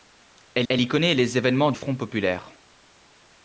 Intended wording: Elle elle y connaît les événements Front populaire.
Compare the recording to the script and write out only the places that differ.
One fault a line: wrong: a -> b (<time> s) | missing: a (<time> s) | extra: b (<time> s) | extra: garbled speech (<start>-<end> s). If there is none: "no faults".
no faults